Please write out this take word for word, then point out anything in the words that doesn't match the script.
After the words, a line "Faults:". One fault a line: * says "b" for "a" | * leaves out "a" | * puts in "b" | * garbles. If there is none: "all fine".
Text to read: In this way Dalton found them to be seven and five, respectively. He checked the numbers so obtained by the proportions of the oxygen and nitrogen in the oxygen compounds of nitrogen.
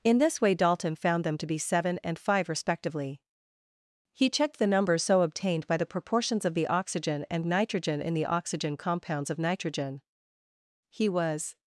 In this way Dalton found them to be seven and five, respectively. He checked the numbers so obtained by the proportions of the oxygen and nitrogen in the oxygen compounds of nitrogen. He was
Faults:
* puts in "He was"